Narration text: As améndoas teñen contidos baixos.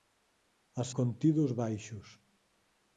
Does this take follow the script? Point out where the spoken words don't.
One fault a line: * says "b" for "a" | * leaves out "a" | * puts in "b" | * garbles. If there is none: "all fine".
* leaves out "améndoas teñen"